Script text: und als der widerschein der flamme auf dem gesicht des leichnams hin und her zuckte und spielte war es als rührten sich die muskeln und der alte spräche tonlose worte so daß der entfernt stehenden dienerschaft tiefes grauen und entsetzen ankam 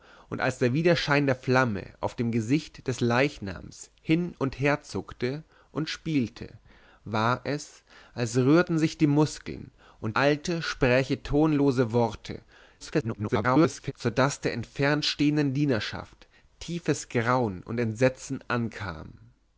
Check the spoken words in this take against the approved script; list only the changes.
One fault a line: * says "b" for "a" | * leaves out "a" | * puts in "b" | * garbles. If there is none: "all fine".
* leaves out "der"
* garbles